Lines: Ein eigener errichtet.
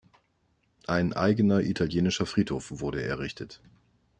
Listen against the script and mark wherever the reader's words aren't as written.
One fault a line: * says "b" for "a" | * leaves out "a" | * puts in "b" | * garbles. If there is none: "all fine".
* puts in "italienischer Friedhof wurde"